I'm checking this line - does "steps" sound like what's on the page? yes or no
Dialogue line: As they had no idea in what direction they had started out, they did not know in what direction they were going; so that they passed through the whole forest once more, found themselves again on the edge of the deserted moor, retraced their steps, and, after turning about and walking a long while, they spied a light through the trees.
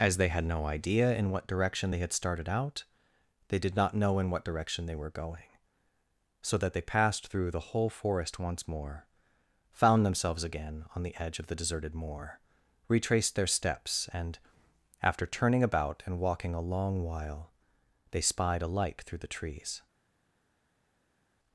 yes